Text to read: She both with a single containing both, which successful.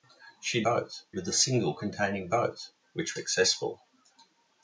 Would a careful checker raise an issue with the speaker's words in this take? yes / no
no